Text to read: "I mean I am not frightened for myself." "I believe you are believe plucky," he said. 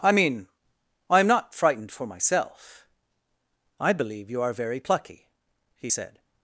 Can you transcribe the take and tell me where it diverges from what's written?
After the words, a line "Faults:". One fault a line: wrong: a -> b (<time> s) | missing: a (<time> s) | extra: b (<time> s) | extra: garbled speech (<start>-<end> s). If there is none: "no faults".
"I mean I am not frightened for myself." "I believe you are very plucky," he said.
Faults:
wrong: believe -> very (4.5 s)